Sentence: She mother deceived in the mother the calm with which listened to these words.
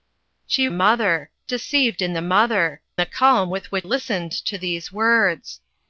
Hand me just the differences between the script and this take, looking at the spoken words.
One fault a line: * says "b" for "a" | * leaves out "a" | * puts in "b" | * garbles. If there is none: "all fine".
all fine